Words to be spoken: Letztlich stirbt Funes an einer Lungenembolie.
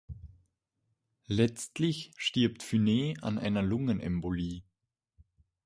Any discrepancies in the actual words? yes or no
no